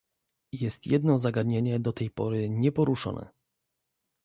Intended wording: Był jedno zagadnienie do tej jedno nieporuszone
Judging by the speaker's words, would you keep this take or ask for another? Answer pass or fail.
fail